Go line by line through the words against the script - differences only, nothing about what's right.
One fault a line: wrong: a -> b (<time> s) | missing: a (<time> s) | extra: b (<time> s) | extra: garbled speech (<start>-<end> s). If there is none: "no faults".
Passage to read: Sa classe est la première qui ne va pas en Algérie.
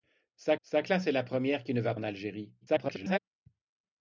extra: sa (0.6 s)
missing: pas (1.9 s)
extra: garbled speech (2.6-3.2 s)